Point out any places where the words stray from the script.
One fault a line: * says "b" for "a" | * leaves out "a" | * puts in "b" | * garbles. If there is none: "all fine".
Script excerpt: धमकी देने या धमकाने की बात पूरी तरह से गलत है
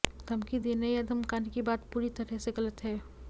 all fine